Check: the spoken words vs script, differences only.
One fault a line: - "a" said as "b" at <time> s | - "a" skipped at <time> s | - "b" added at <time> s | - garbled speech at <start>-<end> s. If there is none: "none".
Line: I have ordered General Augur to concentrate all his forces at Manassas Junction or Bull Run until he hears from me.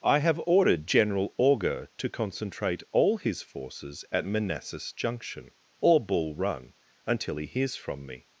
none